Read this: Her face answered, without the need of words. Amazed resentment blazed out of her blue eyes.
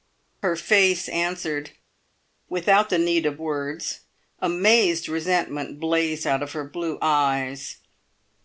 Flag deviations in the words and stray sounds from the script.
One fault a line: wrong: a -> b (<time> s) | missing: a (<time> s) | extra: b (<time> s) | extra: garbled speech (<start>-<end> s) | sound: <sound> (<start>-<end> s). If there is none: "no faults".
no faults